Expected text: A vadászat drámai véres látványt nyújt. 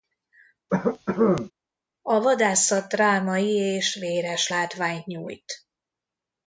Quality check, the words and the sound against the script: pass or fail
fail